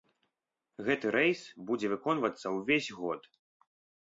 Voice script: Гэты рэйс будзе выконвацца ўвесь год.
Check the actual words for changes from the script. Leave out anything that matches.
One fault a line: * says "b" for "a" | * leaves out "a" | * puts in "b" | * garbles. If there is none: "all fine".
all fine